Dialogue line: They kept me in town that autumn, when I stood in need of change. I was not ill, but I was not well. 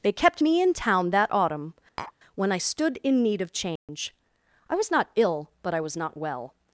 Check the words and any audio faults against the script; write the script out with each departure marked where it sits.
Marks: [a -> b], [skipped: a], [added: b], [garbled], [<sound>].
They kept me in town that autumn, [tap] when I stood in need of change. [dropout] I was not ill, but I was not well.